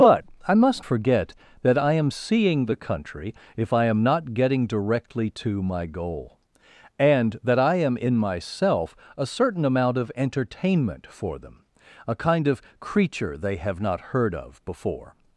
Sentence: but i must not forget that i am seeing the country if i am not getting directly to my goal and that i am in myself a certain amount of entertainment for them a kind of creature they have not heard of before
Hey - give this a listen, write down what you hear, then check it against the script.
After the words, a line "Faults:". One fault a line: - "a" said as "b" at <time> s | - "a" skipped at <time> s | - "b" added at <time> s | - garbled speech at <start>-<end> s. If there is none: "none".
but i must forget that i am seeing the country if i am not getting directly to my goal and that i am in myself a certain amount of entertainment for them a kind of creature they have not heard of before
Faults:
- "not" skipped at 0.8 s